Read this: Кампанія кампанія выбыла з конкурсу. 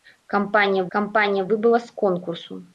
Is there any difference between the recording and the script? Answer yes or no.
no